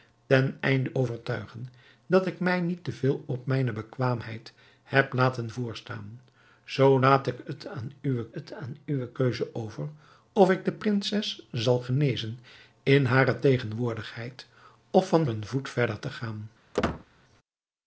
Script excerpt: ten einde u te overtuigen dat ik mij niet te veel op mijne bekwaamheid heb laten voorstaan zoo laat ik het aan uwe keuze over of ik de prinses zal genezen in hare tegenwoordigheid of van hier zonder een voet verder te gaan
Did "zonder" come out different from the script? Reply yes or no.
yes